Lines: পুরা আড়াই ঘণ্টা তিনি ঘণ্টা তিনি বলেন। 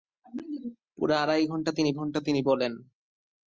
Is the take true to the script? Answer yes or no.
yes